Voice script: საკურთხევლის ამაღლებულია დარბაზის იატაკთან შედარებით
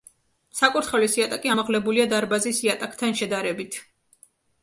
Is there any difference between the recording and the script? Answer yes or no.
yes